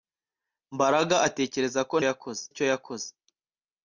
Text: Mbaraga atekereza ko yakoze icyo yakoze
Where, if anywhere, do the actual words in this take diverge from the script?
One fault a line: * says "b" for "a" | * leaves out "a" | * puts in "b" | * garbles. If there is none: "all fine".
all fine